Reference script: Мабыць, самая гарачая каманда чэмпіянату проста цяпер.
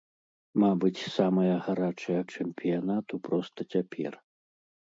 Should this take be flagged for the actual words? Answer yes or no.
yes